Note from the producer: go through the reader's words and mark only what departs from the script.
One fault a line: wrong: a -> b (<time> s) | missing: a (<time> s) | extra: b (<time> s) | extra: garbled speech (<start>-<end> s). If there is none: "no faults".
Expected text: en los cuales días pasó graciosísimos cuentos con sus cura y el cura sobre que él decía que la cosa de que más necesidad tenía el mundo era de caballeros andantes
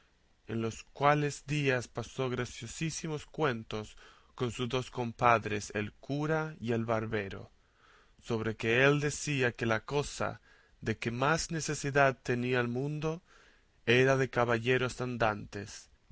extra: dos compadres el (4.7 s)
wrong: cura -> barbero (6.8 s)